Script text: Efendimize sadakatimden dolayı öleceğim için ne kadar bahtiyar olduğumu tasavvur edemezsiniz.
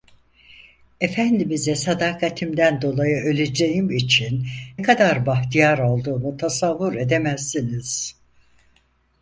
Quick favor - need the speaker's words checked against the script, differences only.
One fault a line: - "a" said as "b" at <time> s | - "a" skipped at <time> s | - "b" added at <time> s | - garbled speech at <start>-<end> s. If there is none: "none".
- "ne" skipped at 4.5 s